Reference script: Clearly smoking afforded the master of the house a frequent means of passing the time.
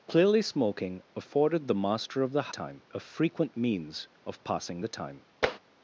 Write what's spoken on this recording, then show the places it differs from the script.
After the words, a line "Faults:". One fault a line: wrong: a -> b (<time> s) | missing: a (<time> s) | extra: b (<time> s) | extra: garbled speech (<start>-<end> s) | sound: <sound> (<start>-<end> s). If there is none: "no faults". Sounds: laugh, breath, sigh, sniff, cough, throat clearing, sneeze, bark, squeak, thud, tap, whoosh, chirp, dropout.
Clearly smoking afforded the master of the time a frequent means of passing the time.
Faults:
wrong: house -> time (2.5 s)
sound: tap (5.4-5.6 s)